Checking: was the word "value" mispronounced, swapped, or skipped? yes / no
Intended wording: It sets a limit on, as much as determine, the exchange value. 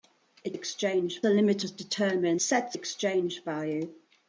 no